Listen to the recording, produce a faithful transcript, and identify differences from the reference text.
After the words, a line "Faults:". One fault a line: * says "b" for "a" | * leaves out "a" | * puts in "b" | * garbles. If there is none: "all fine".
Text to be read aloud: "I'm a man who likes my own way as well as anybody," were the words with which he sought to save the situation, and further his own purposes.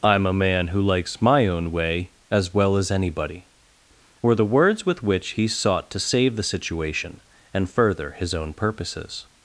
"I'm a man who likes my own way as well as anybody," were the words with which he sought to save the situation, and further his own purposes.
Faults:
all fine